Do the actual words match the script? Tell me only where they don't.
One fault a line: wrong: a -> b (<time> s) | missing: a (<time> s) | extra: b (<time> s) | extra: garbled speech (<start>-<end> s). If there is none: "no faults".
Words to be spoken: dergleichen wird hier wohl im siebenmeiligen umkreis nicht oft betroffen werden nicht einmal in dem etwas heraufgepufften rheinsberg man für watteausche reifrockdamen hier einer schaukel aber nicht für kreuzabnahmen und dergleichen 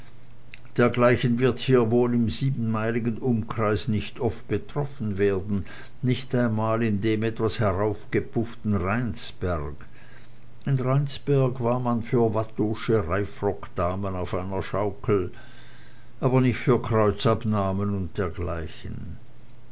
extra: in rheinsberg war (10.6 s)
wrong: hier -> auf (14.1 s)